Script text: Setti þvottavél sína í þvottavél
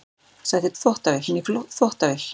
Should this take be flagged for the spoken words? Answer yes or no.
no